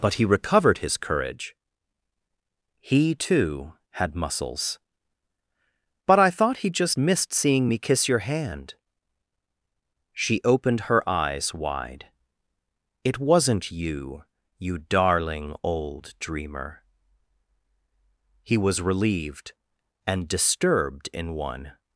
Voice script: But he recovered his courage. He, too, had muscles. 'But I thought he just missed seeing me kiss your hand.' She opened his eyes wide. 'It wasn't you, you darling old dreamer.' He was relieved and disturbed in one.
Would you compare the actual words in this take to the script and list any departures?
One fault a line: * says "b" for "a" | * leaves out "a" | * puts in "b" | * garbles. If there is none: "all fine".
* says "her" for "his"